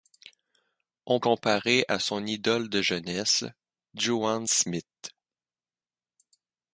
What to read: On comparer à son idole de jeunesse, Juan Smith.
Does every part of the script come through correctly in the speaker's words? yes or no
yes